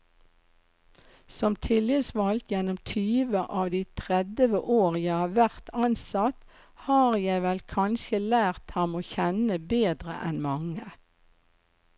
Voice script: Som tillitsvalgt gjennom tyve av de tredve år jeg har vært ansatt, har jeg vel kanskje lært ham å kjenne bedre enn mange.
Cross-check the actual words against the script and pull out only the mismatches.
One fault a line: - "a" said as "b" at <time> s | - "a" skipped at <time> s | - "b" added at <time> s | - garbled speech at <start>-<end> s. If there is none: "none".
none